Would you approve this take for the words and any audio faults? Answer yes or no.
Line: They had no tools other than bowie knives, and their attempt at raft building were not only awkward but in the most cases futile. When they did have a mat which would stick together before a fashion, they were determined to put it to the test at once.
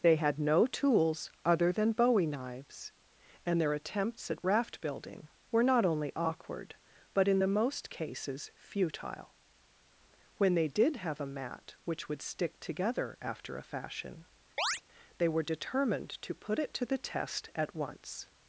no